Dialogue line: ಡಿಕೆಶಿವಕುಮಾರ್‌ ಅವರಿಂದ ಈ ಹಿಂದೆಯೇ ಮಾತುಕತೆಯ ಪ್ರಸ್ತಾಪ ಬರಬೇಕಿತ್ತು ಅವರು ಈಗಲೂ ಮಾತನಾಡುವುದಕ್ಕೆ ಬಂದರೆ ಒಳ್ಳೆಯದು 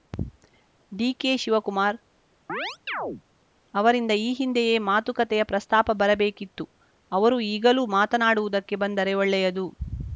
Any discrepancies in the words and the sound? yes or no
yes